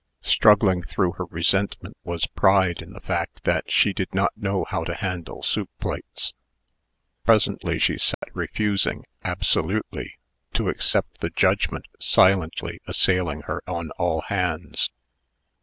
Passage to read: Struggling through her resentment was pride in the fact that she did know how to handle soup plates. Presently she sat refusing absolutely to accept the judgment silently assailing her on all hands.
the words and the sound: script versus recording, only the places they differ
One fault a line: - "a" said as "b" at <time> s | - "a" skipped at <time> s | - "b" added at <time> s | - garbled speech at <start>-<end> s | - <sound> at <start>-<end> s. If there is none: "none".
- "not" added at 4.2 s
- dropout at 8.1-8.2 s